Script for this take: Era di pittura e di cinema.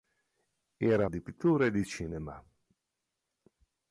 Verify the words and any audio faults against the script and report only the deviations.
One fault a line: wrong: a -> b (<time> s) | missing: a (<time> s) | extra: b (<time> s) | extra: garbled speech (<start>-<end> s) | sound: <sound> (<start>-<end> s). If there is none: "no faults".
no faults